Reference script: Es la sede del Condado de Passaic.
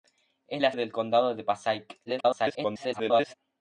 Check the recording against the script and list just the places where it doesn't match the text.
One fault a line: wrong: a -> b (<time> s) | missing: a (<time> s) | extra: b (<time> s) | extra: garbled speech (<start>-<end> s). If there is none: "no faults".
missing: sede (0.7 s)
extra: garbled speech (2.1-3.3 s)